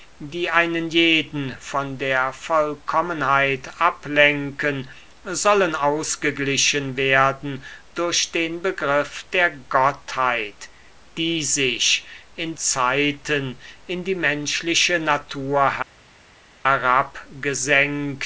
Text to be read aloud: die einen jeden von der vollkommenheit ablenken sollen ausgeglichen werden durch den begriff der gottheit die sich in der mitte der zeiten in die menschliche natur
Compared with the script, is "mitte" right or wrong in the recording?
wrong